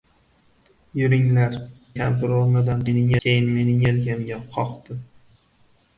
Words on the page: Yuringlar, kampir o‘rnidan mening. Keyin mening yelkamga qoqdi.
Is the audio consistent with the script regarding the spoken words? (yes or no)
yes